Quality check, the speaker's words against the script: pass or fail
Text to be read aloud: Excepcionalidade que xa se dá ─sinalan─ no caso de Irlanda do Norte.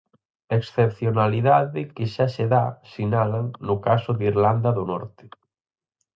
pass